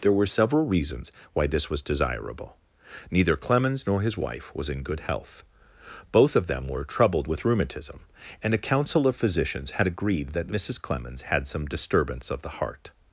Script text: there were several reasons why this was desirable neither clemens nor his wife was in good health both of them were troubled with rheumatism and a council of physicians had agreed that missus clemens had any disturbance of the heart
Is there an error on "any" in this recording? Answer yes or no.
yes